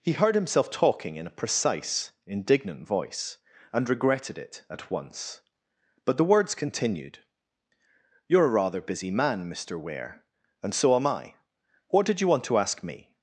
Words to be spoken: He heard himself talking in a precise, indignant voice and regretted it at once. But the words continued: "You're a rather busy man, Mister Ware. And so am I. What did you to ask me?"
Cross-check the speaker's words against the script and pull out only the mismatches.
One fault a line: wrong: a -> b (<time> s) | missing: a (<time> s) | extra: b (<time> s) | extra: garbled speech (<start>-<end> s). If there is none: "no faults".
extra: want (12.3 s)